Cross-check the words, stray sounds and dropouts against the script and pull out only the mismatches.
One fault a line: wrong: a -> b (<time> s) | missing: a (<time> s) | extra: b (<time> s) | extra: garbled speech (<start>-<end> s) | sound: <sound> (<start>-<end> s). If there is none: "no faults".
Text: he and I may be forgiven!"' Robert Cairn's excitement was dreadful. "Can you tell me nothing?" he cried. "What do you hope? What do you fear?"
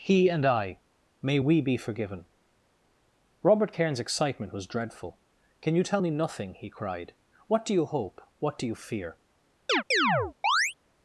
extra: we (1.4 s)
sound: chirp (9.7-10.7 s)